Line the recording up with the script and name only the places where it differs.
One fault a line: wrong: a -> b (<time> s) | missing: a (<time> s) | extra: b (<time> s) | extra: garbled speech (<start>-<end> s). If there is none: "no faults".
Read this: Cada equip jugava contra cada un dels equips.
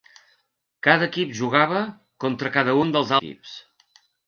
no faults